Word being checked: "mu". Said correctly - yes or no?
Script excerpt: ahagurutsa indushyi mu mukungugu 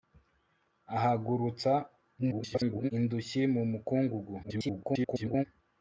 yes